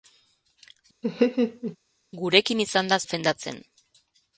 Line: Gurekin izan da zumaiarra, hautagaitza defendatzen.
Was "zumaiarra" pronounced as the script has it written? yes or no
no